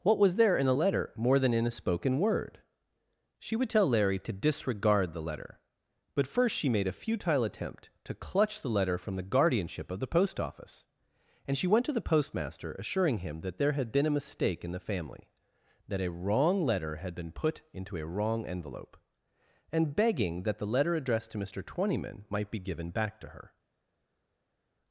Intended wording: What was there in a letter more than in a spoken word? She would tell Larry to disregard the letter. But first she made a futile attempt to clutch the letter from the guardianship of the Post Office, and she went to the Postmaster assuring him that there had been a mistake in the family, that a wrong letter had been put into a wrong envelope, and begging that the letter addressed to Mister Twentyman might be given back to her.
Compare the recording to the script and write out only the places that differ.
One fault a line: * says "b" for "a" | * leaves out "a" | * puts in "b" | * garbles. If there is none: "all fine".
all fine